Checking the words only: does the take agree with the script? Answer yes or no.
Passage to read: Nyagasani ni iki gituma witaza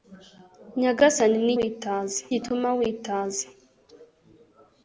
no